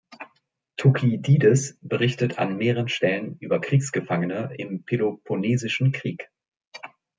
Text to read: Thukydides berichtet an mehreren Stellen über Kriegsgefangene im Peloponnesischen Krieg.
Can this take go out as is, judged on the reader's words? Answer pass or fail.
pass